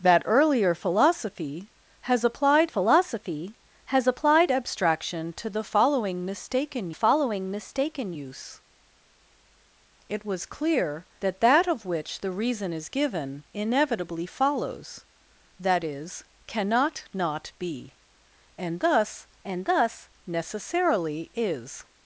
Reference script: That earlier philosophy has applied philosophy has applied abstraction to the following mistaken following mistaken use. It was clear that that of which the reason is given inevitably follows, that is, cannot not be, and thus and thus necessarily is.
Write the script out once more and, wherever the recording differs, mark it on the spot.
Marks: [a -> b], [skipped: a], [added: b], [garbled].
That earlier philosophy has applied philosophy has applied abstraction to the following mistaken following mistaken use. It was clear that that of which the reason is given inevitably follows, that is, cannot not be, and thus and thus necessarily is.